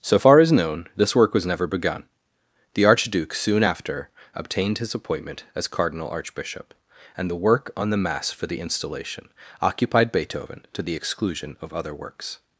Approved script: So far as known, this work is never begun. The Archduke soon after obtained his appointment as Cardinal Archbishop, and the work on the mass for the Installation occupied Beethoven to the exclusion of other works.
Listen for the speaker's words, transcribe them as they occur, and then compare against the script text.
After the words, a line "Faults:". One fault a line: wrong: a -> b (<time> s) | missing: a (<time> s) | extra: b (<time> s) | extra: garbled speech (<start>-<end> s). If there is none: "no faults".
So far as known, this work was never begun. The Archduke soon after obtained his appointment as Cardinal Archbishop, and the work on the mass for the Installation occupied Beethoven to the exclusion of other works.
Faults:
wrong: is -> was (1.3 s)